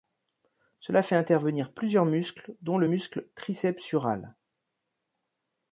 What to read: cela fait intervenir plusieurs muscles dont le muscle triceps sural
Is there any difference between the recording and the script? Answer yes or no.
no